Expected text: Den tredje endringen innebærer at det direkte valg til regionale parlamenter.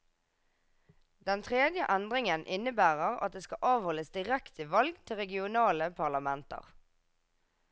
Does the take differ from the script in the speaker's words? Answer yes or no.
yes